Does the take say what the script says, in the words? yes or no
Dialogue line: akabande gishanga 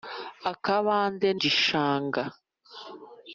yes